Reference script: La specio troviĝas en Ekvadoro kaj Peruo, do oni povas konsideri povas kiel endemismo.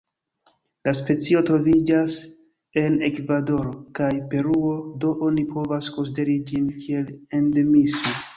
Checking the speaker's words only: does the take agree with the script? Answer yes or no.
no